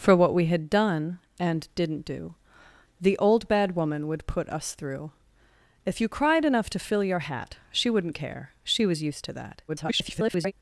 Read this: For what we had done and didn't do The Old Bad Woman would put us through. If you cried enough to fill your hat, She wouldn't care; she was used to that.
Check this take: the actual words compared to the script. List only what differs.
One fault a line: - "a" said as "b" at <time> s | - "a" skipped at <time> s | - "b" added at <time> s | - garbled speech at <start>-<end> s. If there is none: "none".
- garbled speech at 9.7-10.5 s